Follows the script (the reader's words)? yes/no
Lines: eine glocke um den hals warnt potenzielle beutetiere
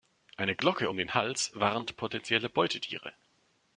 yes